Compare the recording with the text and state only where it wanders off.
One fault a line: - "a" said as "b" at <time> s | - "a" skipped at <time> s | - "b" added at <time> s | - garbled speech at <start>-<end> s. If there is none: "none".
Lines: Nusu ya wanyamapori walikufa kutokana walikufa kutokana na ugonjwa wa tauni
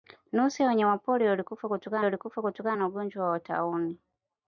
none